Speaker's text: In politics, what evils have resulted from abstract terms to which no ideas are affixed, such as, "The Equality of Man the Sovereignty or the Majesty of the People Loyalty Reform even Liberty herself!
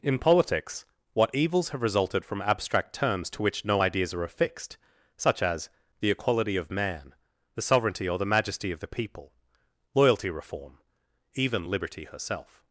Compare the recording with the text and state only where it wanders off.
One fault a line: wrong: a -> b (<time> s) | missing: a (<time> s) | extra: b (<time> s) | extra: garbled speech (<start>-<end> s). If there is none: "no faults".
no faults